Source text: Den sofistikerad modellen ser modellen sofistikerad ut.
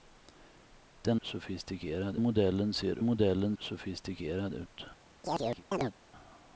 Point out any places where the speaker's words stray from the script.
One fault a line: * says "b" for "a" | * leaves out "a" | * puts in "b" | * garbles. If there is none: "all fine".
all fine